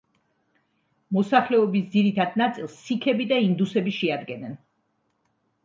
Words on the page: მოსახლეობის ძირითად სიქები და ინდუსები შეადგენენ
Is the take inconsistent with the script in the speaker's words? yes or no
yes